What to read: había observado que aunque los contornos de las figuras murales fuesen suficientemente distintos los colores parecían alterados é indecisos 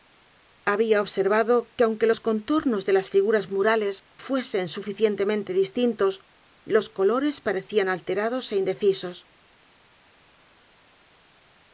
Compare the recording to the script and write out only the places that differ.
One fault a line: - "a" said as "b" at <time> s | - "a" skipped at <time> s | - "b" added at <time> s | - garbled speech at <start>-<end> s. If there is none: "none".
none